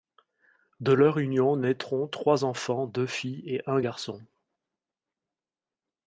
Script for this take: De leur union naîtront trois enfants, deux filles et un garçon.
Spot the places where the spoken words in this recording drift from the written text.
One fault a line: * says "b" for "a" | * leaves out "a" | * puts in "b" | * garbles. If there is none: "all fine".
all fine